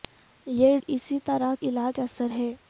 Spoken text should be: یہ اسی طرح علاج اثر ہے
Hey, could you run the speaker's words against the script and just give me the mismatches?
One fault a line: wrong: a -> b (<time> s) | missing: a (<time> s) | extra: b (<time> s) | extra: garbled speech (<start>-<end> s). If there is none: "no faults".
no faults